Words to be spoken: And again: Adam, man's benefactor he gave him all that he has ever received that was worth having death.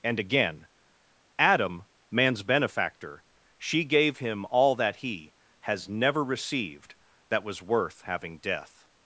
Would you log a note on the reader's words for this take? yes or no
yes